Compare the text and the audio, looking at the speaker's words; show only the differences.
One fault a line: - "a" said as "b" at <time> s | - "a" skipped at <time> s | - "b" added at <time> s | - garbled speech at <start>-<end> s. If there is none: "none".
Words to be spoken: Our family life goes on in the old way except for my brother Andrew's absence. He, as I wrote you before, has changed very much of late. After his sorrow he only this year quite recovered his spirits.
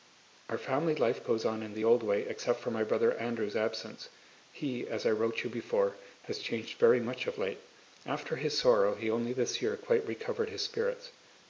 none